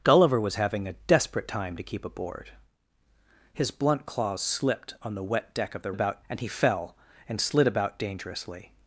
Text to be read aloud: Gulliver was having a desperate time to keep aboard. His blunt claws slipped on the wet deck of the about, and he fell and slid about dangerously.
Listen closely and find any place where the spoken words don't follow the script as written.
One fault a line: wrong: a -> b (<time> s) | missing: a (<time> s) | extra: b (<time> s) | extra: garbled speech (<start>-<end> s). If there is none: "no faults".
no faults